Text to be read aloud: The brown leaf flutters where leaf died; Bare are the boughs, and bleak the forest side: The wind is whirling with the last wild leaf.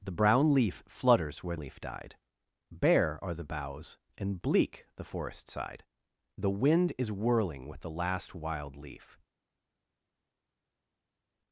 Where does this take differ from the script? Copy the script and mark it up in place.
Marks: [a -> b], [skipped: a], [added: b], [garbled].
The brown leaf flutters where leaf died; Bare are the boughs, and bleak the forest side: The wind is whirling with the last wild leaf.